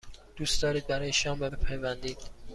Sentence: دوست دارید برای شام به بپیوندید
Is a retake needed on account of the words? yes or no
no